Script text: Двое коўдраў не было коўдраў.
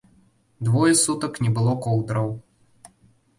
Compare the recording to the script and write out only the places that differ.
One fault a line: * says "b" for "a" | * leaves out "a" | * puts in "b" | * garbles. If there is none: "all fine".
* says "сутак" for "коўдраў"